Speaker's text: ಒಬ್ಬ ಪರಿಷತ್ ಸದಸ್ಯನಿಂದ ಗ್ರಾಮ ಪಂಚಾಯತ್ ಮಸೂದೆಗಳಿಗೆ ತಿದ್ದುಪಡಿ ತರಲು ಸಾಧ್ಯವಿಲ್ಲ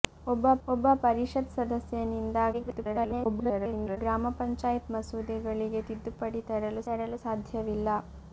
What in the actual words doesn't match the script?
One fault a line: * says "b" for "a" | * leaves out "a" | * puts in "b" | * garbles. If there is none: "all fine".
* puts in "ಒಬ್ಬ"
* garbles
* puts in "ತರಲು"